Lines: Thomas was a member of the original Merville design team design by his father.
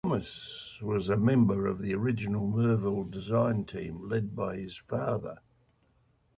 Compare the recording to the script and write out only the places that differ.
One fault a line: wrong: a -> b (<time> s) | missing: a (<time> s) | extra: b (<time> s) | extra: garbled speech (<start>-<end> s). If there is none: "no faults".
wrong: design -> led (4.1 s)